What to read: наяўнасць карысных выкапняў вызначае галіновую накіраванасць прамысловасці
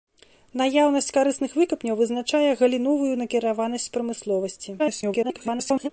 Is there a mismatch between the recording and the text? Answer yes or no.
yes